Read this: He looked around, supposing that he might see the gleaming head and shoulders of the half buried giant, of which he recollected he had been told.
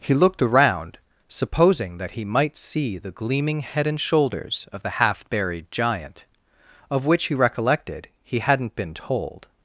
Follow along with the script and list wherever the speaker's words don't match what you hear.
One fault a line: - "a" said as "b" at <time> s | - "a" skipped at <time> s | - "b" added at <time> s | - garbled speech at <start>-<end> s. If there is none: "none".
- "had" said as "hadn't" at 8.4 s